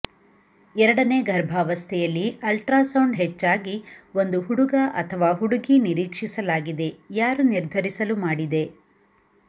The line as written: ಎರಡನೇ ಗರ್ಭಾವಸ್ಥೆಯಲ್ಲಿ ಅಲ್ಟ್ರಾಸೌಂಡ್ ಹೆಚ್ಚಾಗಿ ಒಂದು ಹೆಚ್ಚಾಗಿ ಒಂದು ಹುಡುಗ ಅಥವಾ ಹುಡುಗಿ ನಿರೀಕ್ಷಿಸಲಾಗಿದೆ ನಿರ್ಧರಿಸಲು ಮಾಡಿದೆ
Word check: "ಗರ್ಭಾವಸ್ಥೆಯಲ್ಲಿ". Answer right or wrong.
right